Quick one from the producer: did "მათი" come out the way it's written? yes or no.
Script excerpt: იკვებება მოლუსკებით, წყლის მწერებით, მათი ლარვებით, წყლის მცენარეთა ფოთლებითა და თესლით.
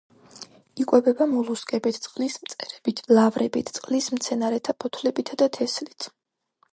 no